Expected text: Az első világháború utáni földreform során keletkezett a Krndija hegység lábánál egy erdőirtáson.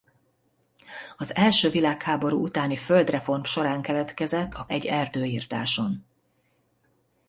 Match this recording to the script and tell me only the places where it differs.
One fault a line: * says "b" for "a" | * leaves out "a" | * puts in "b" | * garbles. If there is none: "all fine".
* leaves out "Krndija hegység lábánál"